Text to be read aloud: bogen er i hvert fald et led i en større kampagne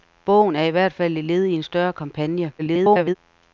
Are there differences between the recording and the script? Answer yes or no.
yes